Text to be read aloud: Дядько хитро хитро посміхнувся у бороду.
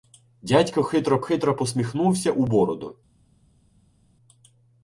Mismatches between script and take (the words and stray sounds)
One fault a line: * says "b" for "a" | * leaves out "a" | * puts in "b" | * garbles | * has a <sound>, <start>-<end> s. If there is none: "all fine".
all fine